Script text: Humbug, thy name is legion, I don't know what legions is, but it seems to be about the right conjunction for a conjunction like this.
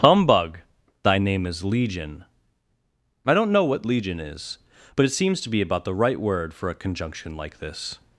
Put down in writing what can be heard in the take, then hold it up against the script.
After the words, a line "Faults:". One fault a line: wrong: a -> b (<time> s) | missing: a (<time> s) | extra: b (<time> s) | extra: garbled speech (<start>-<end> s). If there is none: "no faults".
Humbug, thy name is legion, I don't know what legion is, but it seems to be about the right word for a conjunction like this.
Faults:
wrong: legions -> legion (3.9 s)
wrong: conjunction -> word (6.2 s)